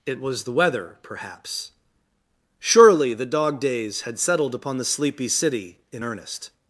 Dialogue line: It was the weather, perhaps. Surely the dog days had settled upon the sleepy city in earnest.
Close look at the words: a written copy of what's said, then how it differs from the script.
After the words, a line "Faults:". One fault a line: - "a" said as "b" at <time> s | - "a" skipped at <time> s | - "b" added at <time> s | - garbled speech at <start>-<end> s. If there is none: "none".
It was the weather, perhaps. Surely the dog days had settled upon the sleepy city in earnest.
Faults:
none